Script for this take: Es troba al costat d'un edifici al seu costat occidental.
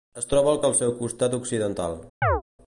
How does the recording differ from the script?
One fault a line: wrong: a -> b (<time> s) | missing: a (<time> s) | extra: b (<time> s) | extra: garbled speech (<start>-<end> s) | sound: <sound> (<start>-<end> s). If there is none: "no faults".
missing: costat d'un edifici (0.6 s)
sound: chirp (2.2-2.4 s)